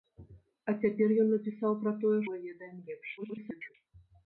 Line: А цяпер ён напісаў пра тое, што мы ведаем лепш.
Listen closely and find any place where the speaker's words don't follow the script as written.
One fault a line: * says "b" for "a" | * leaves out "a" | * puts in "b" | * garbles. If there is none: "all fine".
* leaves out "што"
* garbles